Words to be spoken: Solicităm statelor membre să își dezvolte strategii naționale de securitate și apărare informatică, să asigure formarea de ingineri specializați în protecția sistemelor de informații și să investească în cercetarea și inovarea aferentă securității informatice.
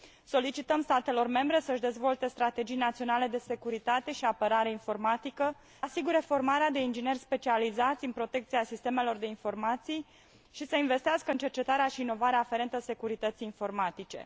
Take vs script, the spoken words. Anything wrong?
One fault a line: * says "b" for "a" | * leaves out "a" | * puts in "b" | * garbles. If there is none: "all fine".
* leaves out "să"